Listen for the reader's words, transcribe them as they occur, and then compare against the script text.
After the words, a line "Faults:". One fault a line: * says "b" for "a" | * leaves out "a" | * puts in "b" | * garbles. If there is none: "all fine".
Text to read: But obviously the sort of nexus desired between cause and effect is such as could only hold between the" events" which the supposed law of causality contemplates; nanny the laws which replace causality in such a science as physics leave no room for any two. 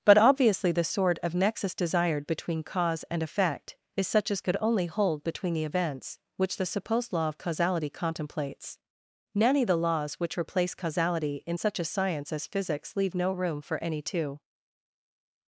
But obviously the sort of nexus desired between cause and effect is such as could only hold between the" events" which the supposed law of causality contemplates; nanny the laws which replace causality in such a science as physics leave no room for any two.
Faults:
all fine